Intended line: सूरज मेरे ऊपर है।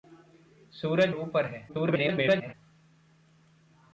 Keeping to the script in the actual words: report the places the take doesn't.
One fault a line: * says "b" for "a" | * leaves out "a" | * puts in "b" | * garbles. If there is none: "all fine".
* leaves out "मेरे"
* garbles